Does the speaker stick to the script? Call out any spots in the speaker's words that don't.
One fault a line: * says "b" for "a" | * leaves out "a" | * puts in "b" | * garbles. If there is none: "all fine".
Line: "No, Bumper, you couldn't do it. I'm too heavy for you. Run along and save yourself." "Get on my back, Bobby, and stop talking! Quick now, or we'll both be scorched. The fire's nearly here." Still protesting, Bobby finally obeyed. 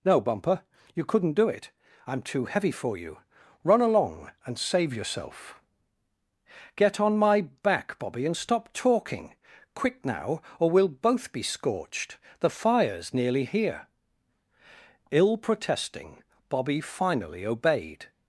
* says "Ill" for "Still"